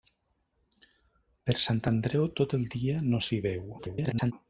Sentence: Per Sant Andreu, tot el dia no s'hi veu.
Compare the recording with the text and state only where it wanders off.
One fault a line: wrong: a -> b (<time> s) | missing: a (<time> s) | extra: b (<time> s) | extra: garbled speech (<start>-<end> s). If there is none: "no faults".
extra: garbled speech (3.8-4.3 s)